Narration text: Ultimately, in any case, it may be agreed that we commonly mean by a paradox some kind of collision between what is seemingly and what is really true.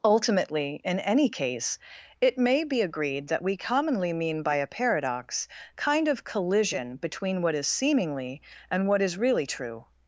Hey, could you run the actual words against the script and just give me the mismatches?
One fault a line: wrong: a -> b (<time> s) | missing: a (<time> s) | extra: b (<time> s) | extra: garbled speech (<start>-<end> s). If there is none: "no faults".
missing: some (5.5 s)